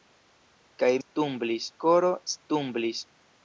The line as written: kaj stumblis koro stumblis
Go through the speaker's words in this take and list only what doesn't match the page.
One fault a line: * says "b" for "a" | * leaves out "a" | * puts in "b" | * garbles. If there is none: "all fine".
all fine